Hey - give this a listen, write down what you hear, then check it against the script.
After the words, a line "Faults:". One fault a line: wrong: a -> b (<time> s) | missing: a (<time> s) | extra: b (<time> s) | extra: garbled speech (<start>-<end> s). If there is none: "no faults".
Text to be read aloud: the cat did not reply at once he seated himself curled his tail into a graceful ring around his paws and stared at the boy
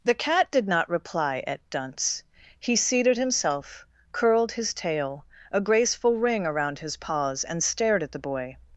the cat did not reply at dunce he seated himself curled his tail a graceful ring around his paws and stared at the boy
Faults:
wrong: once -> dunce (1.7 s)
missing: into (5.2 s)